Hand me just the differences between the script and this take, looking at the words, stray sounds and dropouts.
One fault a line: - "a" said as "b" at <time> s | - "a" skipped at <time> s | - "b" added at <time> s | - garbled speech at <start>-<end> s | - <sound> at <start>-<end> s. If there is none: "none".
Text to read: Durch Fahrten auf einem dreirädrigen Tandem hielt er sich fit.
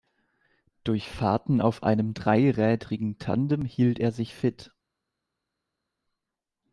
none